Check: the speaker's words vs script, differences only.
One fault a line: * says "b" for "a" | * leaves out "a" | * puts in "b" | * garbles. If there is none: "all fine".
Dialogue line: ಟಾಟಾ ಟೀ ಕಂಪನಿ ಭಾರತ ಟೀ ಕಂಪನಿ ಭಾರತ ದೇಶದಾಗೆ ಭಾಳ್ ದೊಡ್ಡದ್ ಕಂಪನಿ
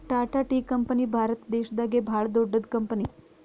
* leaves out "ಟೀ ಕಂಪನಿ ಭಾರತ"